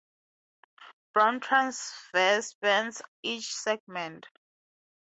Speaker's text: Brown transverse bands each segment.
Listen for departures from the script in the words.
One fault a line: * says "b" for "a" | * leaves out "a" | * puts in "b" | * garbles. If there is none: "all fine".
all fine